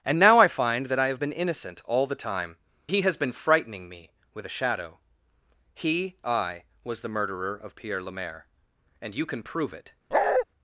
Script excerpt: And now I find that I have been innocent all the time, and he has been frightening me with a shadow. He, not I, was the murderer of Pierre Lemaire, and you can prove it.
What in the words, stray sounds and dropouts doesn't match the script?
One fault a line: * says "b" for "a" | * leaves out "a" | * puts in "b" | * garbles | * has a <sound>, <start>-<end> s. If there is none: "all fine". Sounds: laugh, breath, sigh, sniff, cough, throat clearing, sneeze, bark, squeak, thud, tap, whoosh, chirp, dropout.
* leaves out "and"
* leaves out "not"
* has a bark, 10.1-10.5 s